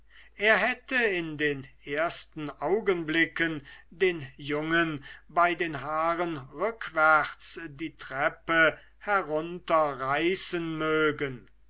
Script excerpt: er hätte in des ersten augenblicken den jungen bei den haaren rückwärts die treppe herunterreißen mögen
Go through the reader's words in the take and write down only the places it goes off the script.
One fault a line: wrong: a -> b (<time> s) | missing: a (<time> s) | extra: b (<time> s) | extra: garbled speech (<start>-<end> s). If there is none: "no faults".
wrong: des -> den (1.4 s)